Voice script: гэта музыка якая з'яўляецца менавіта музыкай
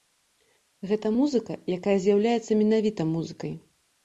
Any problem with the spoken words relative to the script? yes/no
no